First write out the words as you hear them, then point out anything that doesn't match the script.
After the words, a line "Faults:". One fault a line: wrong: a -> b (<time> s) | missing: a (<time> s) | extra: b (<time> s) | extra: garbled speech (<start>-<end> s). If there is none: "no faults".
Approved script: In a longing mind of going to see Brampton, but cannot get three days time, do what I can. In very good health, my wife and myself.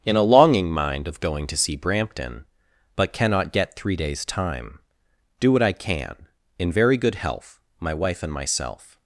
In a longing mind of going to see Brampton, but cannot get three days time, do what I can. In very good health, my wife and myself.
Faults:
no faults